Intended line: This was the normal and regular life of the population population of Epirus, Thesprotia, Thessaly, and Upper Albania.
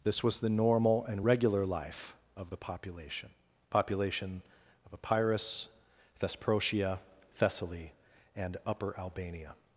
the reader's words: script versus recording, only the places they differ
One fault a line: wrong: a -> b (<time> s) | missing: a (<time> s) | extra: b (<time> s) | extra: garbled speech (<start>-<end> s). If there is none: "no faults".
no faults